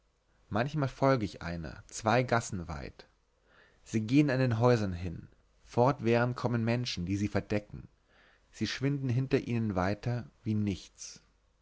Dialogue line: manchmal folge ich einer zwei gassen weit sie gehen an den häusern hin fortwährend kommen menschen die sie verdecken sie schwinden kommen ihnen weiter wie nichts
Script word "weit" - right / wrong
right